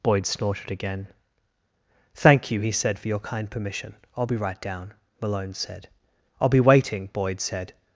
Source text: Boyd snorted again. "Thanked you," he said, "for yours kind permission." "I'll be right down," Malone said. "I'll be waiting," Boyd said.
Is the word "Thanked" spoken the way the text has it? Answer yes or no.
no